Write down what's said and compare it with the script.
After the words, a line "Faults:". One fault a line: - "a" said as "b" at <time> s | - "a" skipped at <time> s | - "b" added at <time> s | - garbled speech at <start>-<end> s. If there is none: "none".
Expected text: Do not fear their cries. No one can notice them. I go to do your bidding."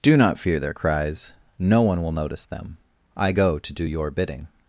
Do not fear their cries. No one will notice them. I go to do your bidding."
Faults:
- "can" said as "will" at 2.0 s